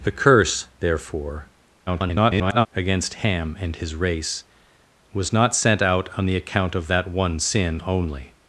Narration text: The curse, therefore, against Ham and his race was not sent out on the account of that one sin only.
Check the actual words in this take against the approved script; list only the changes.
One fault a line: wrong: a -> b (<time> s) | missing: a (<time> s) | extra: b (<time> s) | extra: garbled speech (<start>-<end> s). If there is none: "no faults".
extra: garbled speech (1.9-2.7 s)